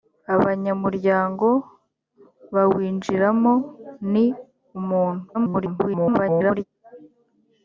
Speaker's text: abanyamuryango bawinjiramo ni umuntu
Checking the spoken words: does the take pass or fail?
fail